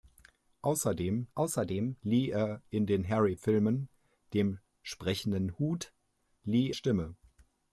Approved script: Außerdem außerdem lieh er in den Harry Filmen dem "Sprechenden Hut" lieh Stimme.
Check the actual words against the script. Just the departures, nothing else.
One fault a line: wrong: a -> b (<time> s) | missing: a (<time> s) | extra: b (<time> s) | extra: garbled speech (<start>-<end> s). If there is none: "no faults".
no faults